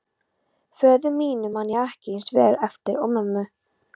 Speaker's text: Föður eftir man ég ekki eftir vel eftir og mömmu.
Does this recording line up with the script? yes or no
no